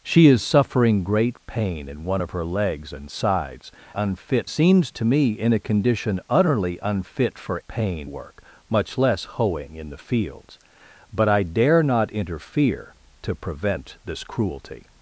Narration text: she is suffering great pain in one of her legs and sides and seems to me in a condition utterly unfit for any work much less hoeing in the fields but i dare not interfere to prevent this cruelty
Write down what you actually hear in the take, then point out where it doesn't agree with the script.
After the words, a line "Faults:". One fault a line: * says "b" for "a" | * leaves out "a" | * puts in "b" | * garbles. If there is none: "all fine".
she is suffering great pain in one of her legs and sides unfit seems to me in a condition utterly unfit for pain work much less hoeing in the fields but i dare not interfere to prevent this cruelty
Faults:
* says "unfit" for "and"
* says "pain" for "any"